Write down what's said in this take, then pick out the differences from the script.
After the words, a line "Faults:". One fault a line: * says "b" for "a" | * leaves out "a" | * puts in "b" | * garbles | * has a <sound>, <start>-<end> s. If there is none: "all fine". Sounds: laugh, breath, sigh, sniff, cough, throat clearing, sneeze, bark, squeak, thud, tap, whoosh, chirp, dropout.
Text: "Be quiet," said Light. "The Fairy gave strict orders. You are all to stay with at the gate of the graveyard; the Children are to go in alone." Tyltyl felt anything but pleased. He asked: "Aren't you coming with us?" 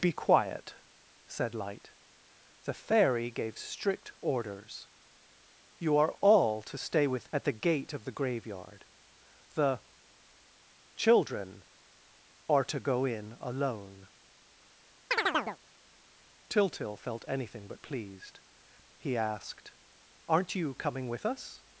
"Be quiet," said Light. "The Fairy gave strict orders. You are all to stay with at the gate of the graveyard; the Children are to go in alone." Tyltyl felt anything but pleased. He asked: "Aren't you coming with us?"
Faults:
* has a chirp, 15.1-15.6 s